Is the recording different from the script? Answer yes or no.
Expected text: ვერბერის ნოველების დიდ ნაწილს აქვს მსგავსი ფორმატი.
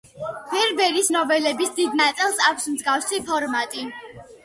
no